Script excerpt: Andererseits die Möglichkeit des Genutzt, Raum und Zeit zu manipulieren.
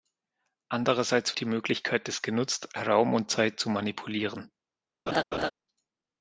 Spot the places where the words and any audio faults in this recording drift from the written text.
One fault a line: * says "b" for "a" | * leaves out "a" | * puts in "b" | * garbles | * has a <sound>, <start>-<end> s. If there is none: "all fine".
* has a laugh, 5.1-5.5 s